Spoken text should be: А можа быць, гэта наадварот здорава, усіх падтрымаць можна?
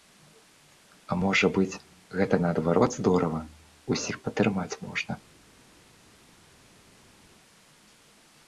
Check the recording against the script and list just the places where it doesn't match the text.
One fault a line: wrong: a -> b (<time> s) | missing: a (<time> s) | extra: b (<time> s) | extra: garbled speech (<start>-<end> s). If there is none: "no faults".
no faults